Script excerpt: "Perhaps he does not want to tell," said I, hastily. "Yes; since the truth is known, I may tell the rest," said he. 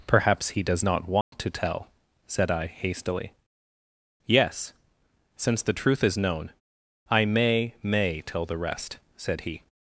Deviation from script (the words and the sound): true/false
true